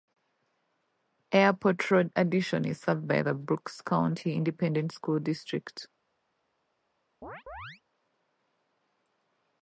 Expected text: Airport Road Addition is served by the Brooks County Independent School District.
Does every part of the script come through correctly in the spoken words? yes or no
yes